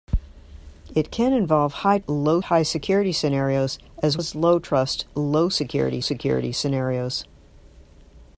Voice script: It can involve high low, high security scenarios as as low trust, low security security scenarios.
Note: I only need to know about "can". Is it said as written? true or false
true